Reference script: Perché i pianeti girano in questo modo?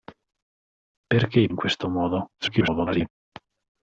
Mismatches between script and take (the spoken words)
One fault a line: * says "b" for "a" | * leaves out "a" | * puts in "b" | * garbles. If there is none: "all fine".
* leaves out "pianeti girano"
* garbles